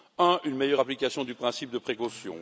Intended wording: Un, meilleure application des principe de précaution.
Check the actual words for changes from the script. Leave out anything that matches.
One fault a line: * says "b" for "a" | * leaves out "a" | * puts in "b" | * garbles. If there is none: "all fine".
* puts in "une"
* says "du" for "des"